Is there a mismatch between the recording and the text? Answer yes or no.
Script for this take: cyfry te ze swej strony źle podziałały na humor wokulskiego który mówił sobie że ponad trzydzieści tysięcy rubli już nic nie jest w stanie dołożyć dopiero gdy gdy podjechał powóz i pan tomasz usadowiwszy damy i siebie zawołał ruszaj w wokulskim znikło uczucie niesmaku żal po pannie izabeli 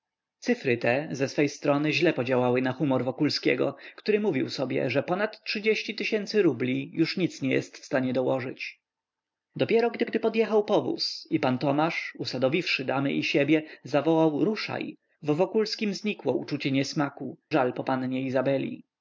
no